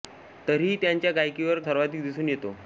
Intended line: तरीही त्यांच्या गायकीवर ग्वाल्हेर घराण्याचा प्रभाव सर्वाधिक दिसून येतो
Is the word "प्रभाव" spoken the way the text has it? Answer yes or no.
no